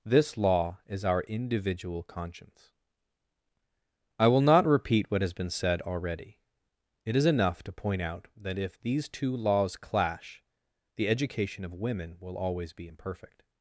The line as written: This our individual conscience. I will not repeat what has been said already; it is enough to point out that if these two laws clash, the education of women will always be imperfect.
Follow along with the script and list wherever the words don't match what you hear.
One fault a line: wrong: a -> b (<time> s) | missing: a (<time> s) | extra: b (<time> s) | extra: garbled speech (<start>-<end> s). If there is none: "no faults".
extra: law is (0.3 s)